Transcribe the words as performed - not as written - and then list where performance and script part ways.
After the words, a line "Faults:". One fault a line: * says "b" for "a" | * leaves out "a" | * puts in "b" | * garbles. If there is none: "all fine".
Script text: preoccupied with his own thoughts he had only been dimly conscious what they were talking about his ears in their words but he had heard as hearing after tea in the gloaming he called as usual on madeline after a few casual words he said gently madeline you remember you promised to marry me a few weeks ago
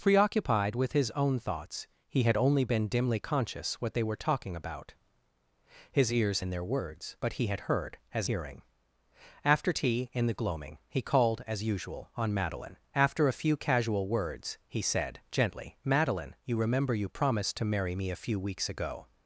preoccupied with his own thoughts he had only been dimly conscious what they were talking about his ears in their words but he had heard as hearing after tea in the gloaming he called as usual on madeline after a few casual words he said gently madeline you remember you promised to marry me a few weeks ago
Faults:
all fine